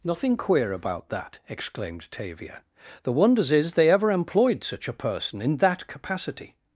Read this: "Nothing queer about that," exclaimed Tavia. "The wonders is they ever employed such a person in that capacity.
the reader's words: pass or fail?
pass